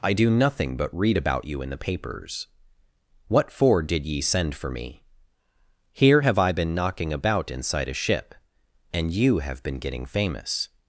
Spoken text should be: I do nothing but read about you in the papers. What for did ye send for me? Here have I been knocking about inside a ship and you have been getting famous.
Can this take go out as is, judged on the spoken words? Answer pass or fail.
pass